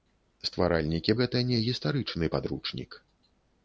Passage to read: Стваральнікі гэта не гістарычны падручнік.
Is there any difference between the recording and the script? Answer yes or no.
no